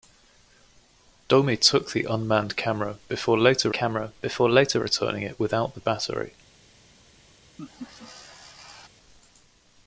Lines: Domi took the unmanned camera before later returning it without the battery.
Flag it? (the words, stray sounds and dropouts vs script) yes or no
yes